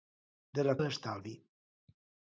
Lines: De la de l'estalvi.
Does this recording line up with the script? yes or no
yes